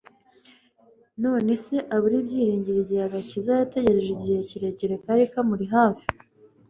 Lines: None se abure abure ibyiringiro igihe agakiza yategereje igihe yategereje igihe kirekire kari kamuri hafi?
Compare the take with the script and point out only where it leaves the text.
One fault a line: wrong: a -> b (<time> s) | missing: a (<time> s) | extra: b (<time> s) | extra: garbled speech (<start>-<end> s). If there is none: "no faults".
missing: abure (2.1 s)
missing: yategereje igihe (4.4 s)